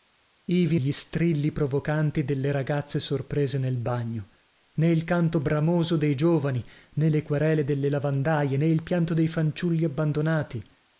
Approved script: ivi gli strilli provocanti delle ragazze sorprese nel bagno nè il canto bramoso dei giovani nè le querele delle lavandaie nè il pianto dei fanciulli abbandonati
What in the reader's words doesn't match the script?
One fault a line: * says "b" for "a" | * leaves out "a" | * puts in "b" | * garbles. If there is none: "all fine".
all fine